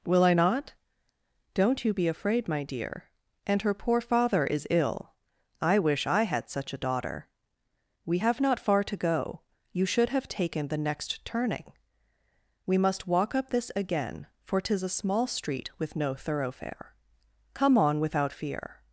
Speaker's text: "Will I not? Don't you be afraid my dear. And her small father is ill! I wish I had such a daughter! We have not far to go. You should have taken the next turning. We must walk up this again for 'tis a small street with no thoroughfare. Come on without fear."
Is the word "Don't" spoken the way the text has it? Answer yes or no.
yes